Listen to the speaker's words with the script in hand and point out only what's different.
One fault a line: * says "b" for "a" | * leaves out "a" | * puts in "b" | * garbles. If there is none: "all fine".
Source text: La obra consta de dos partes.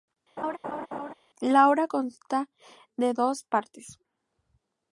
all fine